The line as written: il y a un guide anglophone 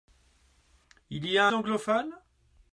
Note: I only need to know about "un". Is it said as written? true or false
false